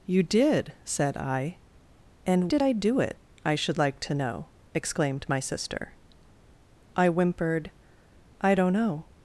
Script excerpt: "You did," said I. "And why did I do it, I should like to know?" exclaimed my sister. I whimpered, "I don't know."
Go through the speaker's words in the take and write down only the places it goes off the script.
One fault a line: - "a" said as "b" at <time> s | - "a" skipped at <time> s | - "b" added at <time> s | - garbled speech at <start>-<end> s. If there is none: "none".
- "why" skipped at 2.5 s